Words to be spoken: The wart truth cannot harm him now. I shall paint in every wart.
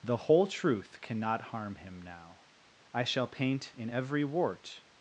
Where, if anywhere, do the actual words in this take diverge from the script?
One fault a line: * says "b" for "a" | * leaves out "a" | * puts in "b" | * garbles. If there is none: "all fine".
* says "whole" for "wart"